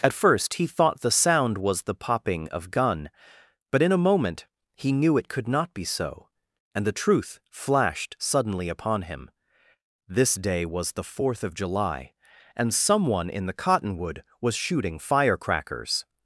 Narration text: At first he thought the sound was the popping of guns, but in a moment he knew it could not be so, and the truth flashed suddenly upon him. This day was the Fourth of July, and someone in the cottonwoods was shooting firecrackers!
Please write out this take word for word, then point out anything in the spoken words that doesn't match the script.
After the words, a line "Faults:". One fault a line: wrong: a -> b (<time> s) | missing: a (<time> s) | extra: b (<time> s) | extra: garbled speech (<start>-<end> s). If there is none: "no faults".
At first he thought the sound was the popping of gun, but in a moment he knew it could not be so, and the truth flashed suddenly upon him. This day was the Fourth of July, and someone in the cottonwood was shooting firecrackers!
Faults:
wrong: guns -> gun (2.7 s)
wrong: cottonwoods -> cottonwood (13.5 s)